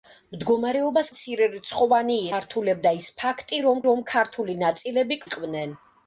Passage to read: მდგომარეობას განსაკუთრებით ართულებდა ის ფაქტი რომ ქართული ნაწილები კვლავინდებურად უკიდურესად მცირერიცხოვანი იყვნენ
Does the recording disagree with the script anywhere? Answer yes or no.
yes